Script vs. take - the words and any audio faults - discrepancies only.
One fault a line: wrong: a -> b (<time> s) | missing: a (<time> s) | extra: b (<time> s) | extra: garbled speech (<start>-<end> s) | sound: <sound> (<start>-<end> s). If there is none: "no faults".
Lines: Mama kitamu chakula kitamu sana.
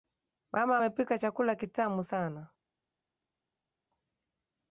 wrong: kitamu -> amepika (0.7 s)